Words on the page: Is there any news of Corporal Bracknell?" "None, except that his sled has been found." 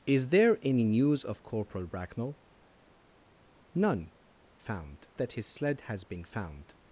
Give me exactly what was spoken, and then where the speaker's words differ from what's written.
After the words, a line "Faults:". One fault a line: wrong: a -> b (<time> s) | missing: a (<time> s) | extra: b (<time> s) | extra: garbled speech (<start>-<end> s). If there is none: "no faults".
Is there any news of Corporal Bracknell?" "None, found that his sled has been found."
Faults:
wrong: except -> found (4.6 s)